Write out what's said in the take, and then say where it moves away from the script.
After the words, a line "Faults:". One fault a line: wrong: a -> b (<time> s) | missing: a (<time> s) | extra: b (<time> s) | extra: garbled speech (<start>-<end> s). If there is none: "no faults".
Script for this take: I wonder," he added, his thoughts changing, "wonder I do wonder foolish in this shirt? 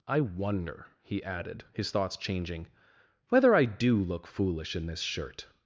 I wonder," he added, his thoughts changing, "whether I do look foolish in this shirt?
Faults:
wrong: wonder -> whether (3.3 s)
wrong: wonder -> look (4.0 s)